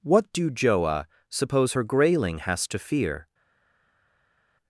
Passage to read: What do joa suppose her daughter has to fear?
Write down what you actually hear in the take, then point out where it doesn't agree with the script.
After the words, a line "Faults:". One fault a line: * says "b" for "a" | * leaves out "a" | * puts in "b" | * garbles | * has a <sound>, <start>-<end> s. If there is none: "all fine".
What do joa suppose her grayling has to fear?
Faults:
* says "grayling" for "daughter"